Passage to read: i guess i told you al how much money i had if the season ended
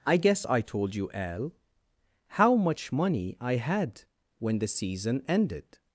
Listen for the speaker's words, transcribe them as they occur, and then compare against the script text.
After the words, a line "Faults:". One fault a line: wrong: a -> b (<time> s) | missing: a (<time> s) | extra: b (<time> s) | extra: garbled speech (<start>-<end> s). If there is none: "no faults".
i guess i told you al how much money i had when the season ended
Faults:
wrong: if -> when (4.4 s)